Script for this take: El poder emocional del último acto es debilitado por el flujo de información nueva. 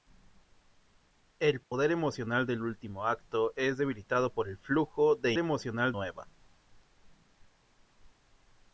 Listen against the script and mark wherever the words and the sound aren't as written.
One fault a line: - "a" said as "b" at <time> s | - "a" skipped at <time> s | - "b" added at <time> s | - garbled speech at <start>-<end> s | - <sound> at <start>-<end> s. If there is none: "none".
- dropout at 1.6-1.7 s
- "información" said as "emocional" at 5.4 s